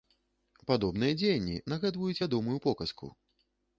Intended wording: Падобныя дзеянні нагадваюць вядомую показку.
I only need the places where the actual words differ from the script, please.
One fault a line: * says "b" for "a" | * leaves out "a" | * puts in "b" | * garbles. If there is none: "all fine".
all fine